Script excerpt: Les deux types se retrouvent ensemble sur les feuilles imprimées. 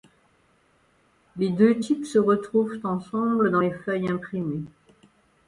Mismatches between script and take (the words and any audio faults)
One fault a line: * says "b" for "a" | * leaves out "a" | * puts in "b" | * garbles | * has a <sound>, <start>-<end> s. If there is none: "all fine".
* says "dans" for "sur"